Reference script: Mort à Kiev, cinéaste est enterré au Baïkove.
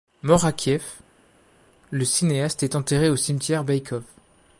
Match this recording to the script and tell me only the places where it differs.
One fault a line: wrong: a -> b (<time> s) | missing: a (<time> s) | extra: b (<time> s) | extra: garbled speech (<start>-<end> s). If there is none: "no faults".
extra: le (1.9 s)
extra: cimetière (3.1 s)